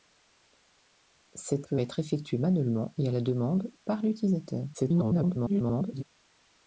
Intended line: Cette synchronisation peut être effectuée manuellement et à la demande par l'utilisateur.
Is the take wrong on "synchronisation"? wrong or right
wrong